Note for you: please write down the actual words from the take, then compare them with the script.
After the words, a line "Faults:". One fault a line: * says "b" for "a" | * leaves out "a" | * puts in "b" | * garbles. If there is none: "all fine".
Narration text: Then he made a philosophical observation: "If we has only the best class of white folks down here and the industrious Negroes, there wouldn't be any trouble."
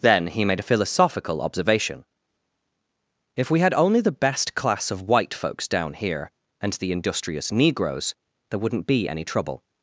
Then he made a philosophical observation: "If we had only the best class of white folks down here and the industrious Negroes, there wouldn't be any trouble."
Faults:
* says "had" for "has"